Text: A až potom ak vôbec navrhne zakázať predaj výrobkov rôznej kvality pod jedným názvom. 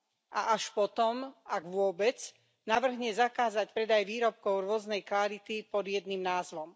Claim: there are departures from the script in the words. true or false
false